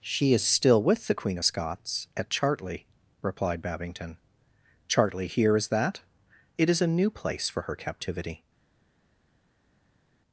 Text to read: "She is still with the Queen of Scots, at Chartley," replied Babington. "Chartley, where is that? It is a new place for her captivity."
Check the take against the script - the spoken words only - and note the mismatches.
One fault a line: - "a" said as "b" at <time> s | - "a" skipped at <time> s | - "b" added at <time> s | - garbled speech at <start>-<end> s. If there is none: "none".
- "where" said as "here" at 5.3 s